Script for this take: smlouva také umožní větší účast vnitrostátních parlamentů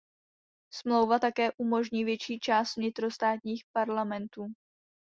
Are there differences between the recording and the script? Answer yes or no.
no